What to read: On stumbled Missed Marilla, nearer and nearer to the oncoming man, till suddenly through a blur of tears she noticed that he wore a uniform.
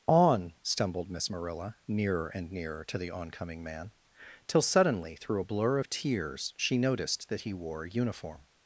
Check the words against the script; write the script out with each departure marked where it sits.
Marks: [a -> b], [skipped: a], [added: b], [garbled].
On stumbled [Missed -> Miss] Marilla, nearer and nearer to the oncoming man, till suddenly through a blur of tears she noticed that he wore a uniform.